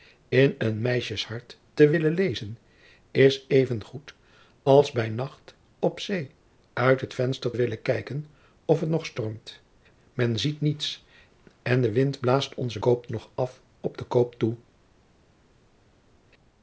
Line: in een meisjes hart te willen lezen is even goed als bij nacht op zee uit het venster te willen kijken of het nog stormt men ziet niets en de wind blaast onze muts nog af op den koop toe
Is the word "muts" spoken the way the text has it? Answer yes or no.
no